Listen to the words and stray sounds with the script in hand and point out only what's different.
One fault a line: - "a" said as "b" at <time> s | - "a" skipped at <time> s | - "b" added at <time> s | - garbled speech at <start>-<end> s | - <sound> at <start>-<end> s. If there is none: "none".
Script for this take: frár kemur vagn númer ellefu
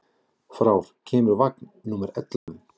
- dropout at 2.4-2.5 s